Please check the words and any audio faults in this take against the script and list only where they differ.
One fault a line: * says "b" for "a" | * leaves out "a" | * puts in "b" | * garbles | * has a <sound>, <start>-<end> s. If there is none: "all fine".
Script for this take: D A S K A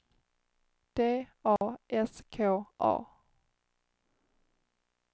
* has a dropout, 1.6-1.6 s